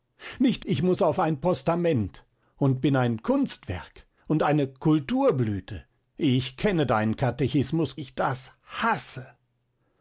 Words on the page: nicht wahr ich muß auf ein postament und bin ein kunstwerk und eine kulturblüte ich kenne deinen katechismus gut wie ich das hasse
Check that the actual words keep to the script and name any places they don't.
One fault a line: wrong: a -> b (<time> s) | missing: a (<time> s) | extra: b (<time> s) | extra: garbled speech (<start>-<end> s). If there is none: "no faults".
missing: wahr (0.7 s)
missing: gut wie (8.0 s)